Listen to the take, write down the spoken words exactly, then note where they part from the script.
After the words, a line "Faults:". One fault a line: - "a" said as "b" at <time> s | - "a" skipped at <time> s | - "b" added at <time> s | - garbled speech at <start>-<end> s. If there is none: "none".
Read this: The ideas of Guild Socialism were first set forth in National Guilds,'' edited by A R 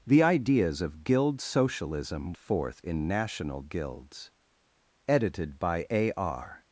The ideas of Guild Socialism forth in National Guilds,'' edited by A R
Faults:
- "were first set" skipped at 2.3 s